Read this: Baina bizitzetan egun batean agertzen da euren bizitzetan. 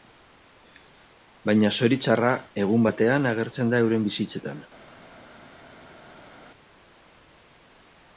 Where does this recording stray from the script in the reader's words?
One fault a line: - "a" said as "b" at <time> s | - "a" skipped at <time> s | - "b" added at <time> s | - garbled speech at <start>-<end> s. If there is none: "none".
- "bizitzetan" said as "zoritxarra" at 1.8 s